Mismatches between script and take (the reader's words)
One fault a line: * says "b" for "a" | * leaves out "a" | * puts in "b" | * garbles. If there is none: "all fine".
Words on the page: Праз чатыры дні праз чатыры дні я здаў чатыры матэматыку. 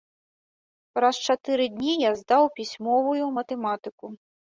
* leaves out "праз чатыры дні"
* says "пісьмовую" for "чатыры"